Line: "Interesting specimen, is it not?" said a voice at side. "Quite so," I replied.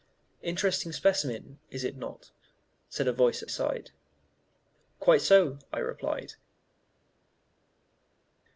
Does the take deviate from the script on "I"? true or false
false